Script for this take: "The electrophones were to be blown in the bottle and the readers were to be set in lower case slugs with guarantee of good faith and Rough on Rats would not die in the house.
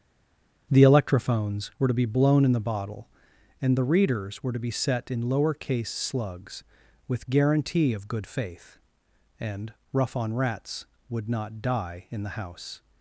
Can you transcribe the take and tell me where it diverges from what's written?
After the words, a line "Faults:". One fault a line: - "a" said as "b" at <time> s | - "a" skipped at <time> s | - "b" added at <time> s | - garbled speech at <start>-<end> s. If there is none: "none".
"The electrophones were to be blown in the bottle and the readers were to be set in lower case slugs with guarantee of good faith and Rough on Rats would not die in the house.
Faults:
none